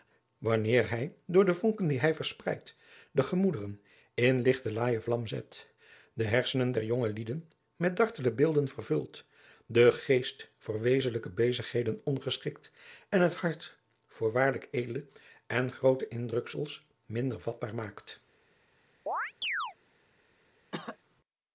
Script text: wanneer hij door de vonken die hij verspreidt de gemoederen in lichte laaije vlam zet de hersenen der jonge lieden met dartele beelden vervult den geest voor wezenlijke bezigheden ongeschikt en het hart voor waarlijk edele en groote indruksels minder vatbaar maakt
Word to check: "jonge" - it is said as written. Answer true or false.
true